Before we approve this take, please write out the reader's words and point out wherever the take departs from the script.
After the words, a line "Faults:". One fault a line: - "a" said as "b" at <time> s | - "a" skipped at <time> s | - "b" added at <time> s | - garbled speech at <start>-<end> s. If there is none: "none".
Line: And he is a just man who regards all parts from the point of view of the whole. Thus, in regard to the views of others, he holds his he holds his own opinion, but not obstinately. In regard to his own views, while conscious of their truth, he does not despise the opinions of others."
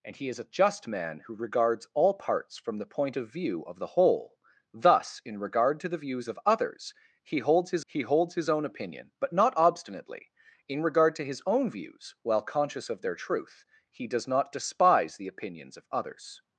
And he is a just man who regards all parts from the point of view of the whole. Thus, in regard to the views of others, he holds his he holds his own opinion, but not obstinately. In regard to his own views, while conscious of their truth, he does not despise the opinions of others."
Faults:
none